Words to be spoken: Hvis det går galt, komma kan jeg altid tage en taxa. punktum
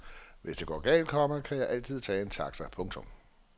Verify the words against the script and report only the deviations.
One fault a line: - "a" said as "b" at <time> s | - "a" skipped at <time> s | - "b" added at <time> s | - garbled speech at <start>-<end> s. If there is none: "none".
none